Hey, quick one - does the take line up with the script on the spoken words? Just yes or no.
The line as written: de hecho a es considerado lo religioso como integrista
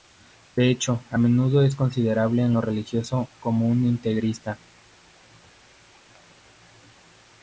no